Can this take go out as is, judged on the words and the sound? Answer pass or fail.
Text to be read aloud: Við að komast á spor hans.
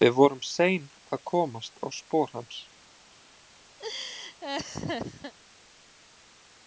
fail